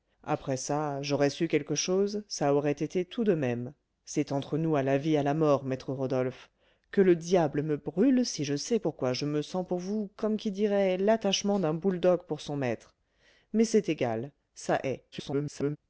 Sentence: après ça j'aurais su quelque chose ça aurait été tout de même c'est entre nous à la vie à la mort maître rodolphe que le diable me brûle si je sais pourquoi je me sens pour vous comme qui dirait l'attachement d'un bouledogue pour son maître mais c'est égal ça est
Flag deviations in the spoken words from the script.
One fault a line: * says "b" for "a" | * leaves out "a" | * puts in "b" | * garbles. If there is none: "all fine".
* garbles